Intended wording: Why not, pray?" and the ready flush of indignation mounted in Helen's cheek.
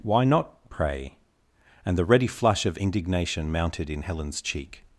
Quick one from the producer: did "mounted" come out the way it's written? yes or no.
yes